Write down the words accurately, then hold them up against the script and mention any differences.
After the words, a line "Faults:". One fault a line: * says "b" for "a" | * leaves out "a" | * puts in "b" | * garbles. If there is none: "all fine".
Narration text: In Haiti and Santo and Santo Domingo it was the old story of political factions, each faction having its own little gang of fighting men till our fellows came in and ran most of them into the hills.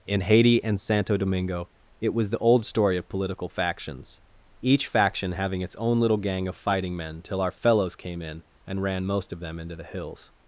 In Haiti and Santo Domingo it was the old story of political factions, each faction having its own little gang of fighting men till our fellows came in and ran most of them into the hills.
Faults:
* leaves out "and Santo"